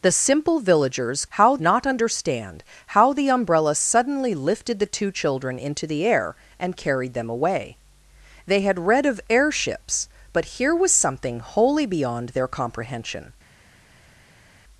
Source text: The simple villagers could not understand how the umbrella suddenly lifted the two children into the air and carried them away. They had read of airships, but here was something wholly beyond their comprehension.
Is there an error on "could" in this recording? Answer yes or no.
yes